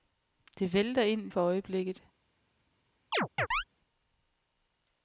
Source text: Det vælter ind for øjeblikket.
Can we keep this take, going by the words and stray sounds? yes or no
no